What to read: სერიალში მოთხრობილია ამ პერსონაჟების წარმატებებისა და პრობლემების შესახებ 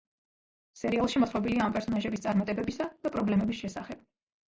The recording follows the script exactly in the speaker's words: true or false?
true